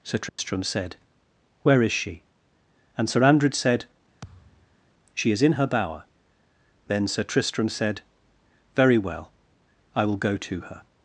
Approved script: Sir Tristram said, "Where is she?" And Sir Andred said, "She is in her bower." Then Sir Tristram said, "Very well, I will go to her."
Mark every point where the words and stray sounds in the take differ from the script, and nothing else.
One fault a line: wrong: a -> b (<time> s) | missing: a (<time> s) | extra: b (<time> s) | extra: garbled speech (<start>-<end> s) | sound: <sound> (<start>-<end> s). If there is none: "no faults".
sound: dropout (0.3-0.4 s)
sound: thud (4.2-4.8 s)